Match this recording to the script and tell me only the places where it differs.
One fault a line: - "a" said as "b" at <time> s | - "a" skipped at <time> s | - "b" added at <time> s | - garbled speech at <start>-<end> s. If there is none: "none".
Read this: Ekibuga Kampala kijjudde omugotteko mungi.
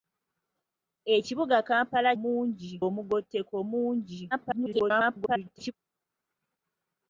- "kijjudde" said as "mungi" at 2.2 s
- garbled speech at 4.3-5.7 s